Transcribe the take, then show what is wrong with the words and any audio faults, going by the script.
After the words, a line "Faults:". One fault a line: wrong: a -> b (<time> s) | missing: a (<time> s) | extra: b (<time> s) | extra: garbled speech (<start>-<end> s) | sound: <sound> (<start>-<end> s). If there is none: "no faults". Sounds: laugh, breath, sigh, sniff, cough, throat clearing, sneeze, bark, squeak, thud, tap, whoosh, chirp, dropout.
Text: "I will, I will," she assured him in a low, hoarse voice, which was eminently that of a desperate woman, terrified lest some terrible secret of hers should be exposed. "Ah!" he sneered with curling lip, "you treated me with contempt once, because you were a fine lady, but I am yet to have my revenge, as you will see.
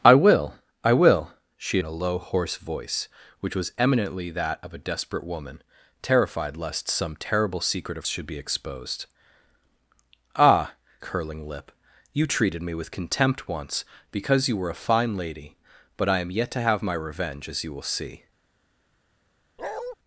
"I will, I will," she in a low, hoarse voice, which was eminently that of a desperate woman, terrified lest some terrible secret of should be exposed. "Ah!" curling lip, "you treated me with contempt once, because you were a fine lady, but I am yet to have my revenge, as you will see.
Faults:
missing: assured him (1.8 s)
missing: hers (8.1 s)
missing: he sneered with (10.7 s)
sound: bark (19.6-20.0 s)